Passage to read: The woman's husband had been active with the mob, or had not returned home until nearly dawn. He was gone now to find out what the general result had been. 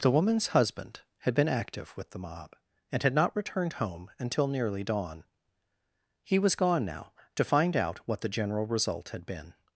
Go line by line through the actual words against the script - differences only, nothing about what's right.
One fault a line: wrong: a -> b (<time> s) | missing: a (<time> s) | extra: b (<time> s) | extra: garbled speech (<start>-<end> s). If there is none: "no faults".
wrong: or -> and (2.9 s)